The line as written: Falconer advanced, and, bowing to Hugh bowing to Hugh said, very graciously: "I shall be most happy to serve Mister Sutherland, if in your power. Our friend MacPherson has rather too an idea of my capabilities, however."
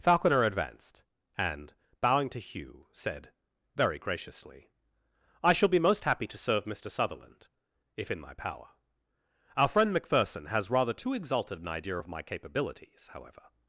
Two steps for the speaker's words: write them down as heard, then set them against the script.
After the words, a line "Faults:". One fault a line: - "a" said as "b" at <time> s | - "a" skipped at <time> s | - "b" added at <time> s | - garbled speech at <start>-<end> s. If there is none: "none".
Falconer advanced, and, bowing to Hugh said, very graciously: "I shall be most happy to serve Mister Sutherland, if in my power. Our friend MacPherson has rather too exalted an idea of my capabilities, however."
Faults:
- "bowing to Hugh" skipped at 2.9 s
- "your" said as "my" at 8.2 s
- "exalted" added at 11.1 s